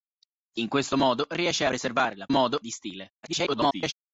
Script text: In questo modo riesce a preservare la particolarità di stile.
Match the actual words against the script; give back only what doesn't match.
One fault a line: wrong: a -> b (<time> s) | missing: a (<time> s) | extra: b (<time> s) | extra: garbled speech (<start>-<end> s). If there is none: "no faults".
missing: a (1.7 s)
wrong: particolarità -> modo (2.3 s)
extra: garbled speech (3.2-3.9 s)